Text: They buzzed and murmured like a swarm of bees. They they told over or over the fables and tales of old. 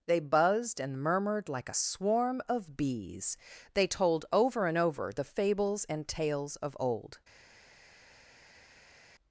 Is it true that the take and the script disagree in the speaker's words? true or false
true